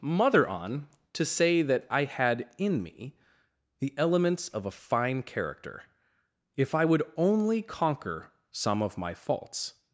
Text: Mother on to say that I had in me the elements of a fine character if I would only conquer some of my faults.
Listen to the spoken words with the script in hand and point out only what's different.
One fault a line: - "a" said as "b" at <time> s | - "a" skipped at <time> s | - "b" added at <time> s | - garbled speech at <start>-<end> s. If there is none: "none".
none